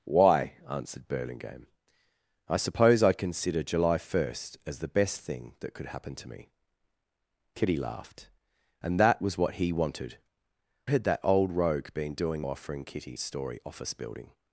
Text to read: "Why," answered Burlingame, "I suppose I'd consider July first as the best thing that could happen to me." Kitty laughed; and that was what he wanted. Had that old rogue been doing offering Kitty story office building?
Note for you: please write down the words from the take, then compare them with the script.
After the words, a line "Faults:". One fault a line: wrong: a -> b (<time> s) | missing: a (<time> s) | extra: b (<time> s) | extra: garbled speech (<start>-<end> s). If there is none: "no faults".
"Why," answered Burlingame, "I suppose I'd consider July first as the best thing that could happen to me." Kitty laughed; and that was what he wanted. Had that old rogue been doing offering Kitty story office building?
Faults:
no faults